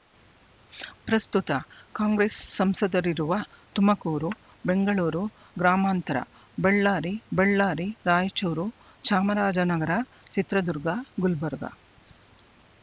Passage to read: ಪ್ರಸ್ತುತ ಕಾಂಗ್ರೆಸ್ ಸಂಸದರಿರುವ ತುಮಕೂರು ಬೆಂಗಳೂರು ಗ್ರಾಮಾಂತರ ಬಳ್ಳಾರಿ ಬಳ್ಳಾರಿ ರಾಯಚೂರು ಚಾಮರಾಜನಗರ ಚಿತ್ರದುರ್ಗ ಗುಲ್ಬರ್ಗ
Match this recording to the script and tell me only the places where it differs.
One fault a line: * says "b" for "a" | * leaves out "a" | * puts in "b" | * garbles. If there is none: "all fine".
all fine